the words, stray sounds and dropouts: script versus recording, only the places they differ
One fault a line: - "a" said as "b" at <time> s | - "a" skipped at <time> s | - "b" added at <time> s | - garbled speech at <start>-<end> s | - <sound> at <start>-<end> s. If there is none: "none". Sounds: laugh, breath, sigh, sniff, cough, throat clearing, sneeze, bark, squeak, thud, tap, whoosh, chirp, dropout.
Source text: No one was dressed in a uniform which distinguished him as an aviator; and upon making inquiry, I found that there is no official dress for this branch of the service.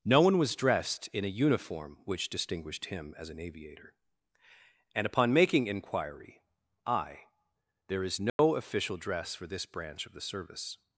- "found that" skipped at 7.2 s
- dropout at 8.3-8.4 s